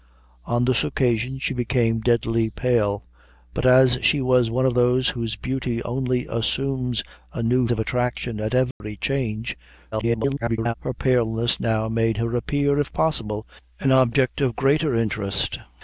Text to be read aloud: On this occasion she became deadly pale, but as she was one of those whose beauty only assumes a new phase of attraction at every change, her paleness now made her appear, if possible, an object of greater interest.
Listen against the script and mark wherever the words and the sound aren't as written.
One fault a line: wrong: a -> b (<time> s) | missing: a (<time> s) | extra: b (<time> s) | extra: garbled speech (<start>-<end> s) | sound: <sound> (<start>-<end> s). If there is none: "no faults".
missing: phase (7.7 s)
sound: dropout (8.7-8.8 s)
extra: garbled speech (9.9-10.7 s)